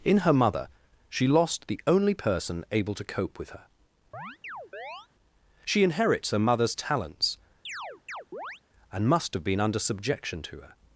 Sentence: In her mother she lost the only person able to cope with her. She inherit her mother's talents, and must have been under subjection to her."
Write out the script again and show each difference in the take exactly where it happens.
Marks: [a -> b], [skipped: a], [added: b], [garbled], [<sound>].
In her mother she lost the only person able to cope with her. [chirp] She [inherit -> inherits] her mother's talents, [chirp] and must have been under subjection to her."